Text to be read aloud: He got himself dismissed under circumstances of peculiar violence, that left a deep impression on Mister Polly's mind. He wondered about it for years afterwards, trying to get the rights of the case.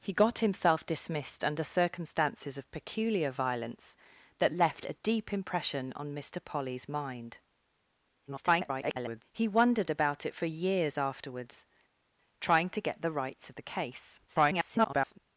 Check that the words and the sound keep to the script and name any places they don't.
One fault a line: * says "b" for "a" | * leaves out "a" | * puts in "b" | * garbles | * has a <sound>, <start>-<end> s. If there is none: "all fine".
* garbles
* garbles